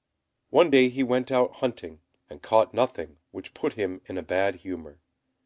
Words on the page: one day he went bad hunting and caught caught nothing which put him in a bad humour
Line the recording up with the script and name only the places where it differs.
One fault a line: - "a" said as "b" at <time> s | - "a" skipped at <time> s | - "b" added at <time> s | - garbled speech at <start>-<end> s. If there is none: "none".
- "bad" said as "out" at 1.3 s
- "caught" skipped at 2.7 s